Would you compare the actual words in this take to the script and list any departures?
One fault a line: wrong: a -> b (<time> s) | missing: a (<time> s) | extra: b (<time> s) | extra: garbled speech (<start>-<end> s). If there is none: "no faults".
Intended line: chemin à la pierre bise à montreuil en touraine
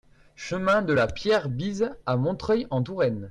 wrong: à -> de (0.8 s)